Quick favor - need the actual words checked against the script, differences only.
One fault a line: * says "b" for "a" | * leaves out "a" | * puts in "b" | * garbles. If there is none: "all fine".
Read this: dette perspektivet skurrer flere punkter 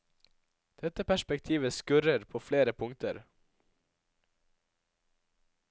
* puts in "på"